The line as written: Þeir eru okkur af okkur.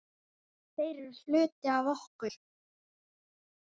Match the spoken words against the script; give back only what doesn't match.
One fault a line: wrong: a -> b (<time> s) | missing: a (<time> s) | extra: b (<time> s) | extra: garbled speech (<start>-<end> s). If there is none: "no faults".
wrong: okkur -> hluti (1.2 s)